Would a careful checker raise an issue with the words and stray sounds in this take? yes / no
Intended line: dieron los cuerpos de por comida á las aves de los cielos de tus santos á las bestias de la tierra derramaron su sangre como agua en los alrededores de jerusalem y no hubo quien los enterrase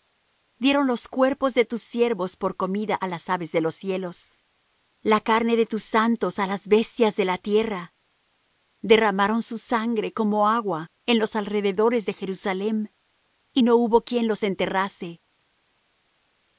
yes